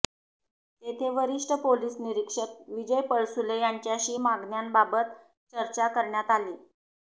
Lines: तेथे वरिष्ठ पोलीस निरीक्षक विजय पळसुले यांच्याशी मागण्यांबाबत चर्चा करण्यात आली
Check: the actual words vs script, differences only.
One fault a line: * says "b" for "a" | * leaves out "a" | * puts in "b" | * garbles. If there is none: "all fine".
all fine